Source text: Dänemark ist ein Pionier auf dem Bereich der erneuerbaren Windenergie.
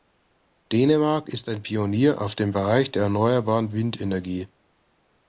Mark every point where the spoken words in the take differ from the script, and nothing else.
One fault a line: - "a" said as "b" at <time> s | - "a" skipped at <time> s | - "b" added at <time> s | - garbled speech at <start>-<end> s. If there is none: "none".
none